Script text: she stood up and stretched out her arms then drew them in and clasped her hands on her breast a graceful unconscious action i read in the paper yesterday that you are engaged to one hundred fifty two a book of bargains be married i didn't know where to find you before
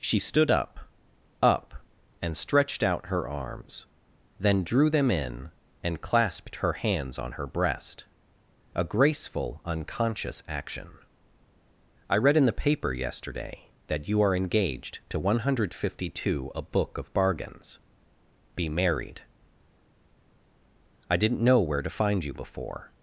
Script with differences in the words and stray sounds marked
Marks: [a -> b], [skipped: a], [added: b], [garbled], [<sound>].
she stood up [added: up] and stretched out her arms then drew them in and clasped her hands on her breast a graceful unconscious action i read in the paper yesterday that you are engaged to one hundred fifty two a book of bargains be married i didn't know where to find you before